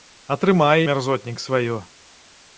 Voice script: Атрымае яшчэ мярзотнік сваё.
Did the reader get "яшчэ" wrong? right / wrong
wrong